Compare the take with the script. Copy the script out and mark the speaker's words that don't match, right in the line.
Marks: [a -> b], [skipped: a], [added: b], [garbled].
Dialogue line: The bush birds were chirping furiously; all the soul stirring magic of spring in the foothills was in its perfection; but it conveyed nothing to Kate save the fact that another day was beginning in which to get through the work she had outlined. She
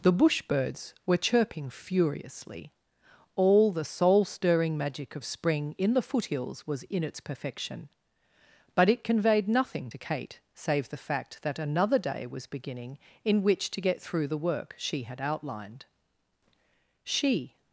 The bush birds were chirping furiously; all the soul stirring magic of spring in the foothills was in its perfection; but it conveyed nothing to Kate save the fact that another day was beginning in which to get through the work she had outlined. She